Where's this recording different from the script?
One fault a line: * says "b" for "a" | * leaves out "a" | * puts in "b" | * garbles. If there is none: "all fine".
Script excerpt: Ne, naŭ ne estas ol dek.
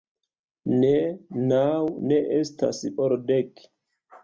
all fine